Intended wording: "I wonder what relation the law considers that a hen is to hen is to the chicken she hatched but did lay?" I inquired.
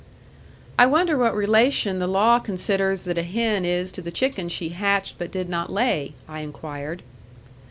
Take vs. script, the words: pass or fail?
fail